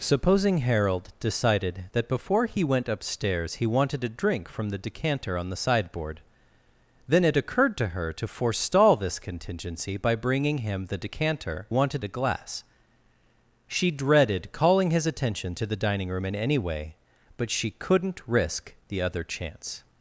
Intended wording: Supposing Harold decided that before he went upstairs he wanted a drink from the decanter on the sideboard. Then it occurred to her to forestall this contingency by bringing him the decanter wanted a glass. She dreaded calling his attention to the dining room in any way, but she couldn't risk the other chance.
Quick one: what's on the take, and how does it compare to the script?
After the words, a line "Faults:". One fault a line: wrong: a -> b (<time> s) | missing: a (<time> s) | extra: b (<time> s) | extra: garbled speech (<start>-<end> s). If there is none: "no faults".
Supposing Harold decided that before he went upstairs he wanted a drink from the decanter on the sideboard. Then it occurred to her to forestall this contingency by bringing him the decanter wanted a glass. She dreaded calling his attention to the dining room in any way, but she couldn't risk the other chance.
Faults:
no faults